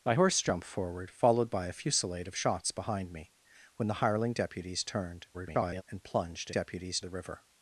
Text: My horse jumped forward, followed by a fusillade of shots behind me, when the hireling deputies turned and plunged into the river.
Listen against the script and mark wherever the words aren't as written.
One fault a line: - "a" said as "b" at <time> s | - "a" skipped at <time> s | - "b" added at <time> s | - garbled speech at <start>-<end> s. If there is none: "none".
- garbled speech at 5.3-5.8 s
- "into" said as "deputies" at 6.5 s